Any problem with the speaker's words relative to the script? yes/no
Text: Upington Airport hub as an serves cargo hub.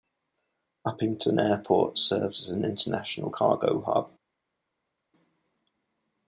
yes